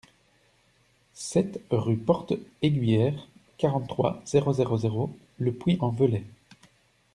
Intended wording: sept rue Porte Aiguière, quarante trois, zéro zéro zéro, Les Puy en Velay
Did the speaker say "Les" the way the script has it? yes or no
no